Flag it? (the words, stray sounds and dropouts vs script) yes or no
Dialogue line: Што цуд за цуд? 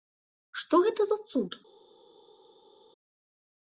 yes